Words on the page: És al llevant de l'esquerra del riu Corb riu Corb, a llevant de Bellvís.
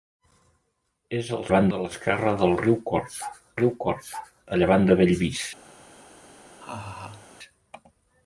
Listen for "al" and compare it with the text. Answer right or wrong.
right